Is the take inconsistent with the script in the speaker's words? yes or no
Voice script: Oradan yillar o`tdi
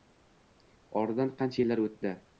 yes